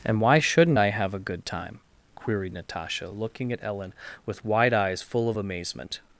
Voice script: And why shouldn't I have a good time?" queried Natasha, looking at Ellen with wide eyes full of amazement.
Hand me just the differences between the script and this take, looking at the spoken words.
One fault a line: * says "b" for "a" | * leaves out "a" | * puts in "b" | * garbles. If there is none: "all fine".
all fine